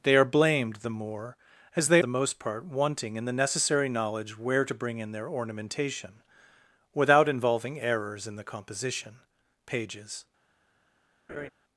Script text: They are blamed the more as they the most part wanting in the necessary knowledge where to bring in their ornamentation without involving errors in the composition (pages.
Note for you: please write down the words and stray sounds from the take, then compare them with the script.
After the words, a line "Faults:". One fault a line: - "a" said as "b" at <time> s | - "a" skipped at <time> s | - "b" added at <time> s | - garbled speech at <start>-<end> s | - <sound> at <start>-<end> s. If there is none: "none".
They are blamed the more as they the most part wanting in the necessary knowledge where to bring in their ornamentation without involving errors in the composition (pages.
Faults:
- laugh at 11.3-11.5 s